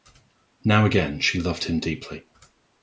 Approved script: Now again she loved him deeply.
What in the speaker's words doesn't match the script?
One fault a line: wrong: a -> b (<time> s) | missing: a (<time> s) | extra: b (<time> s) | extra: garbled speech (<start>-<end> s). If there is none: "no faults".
no faults